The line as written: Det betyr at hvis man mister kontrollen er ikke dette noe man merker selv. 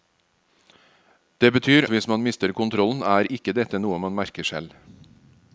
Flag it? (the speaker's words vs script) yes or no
yes